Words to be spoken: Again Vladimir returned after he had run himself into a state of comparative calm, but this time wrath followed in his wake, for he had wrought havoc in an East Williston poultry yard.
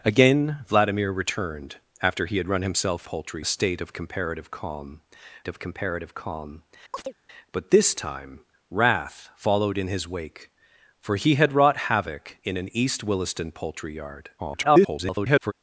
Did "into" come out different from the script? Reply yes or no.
yes